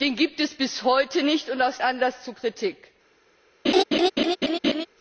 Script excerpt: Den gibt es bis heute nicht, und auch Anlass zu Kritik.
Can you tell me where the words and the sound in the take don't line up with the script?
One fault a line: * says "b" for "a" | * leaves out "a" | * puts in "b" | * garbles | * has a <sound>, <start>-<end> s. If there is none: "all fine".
* has a laugh, 3.6-4.9 s